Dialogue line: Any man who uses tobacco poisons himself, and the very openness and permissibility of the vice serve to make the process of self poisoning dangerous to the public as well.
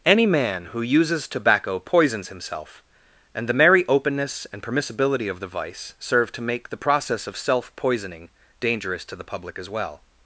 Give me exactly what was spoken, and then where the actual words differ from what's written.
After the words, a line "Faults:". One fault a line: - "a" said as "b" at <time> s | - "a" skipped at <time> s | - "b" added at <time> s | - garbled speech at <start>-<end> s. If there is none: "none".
Any man who uses tobacco poisons himself, and the merry openness and permissibility of the vice serve to make the process of self poisoning dangerous to the public as well.
Faults:
- "very" said as "merry" at 3.5 s